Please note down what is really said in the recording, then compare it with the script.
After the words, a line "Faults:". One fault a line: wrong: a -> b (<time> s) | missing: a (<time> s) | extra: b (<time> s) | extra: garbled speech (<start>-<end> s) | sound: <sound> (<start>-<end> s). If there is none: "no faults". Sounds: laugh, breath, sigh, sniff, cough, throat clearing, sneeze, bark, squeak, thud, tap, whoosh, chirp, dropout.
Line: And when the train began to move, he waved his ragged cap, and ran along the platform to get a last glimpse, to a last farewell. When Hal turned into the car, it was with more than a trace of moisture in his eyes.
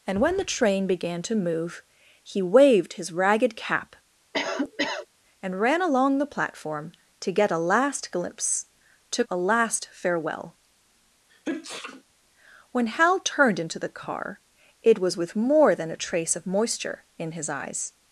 And when the train began to move, he waved his ragged cap, and ran along the platform to get a last glimpse, to a last farewell. When Hal turned into the car, it was with more than a trace of moisture in his eyes.
Faults:
sound: cough (4.3-5.1 s)
sound: sneeze (11.3-12.0 s)